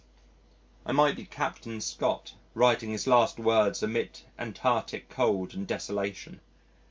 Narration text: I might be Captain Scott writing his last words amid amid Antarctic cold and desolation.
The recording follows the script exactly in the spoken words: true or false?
false